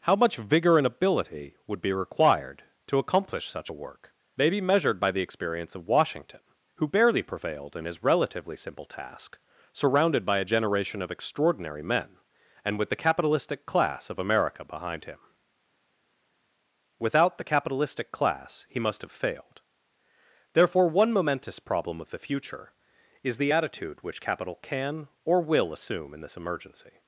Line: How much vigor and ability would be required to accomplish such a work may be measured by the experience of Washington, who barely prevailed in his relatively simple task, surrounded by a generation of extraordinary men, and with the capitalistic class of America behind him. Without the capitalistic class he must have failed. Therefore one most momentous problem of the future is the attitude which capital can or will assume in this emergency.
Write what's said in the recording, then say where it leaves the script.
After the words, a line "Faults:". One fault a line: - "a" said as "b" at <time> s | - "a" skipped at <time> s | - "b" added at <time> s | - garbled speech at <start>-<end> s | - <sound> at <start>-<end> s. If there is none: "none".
How much vigor and ability would be required to accomplish such a work may be measured by the experience of Washington, who barely prevailed in his relatively simple task, surrounded by a generation of extraordinary men, and with the capitalistic class of America behind him. Without the capitalistic class he must have failed. Therefore one momentous problem of the future is the attitude which capital can or will assume in this emergency.
Faults:
- "most" skipped at 21.1 s